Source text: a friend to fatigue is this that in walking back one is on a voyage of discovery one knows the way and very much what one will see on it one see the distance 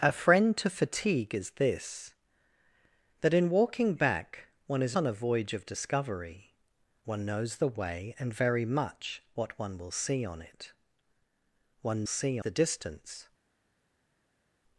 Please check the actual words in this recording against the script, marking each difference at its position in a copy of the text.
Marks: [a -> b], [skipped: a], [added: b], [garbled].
a friend to fatigue is this that in walking back one is on a voyage of discovery one knows the way and very much what one will see on it one see the distance